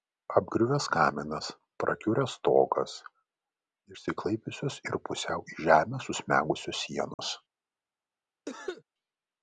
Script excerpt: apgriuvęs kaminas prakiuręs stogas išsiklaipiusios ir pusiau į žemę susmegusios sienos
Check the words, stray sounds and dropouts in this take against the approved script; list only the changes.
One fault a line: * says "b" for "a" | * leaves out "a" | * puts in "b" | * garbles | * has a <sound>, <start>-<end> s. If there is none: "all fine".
* has a dropout, 7.1-7.2 s
* has a cough, 8.5-8.8 s